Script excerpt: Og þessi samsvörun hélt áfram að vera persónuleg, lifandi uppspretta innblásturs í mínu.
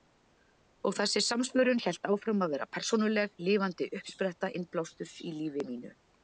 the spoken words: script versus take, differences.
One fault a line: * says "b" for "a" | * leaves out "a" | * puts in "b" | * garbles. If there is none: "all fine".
* puts in "lífi"